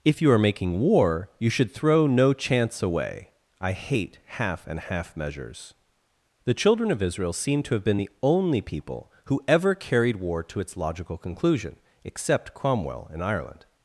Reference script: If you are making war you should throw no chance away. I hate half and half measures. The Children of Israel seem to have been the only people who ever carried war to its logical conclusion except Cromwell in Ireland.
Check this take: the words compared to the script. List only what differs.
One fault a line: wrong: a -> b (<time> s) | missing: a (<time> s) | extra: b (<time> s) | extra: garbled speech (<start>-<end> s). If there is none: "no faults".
no faults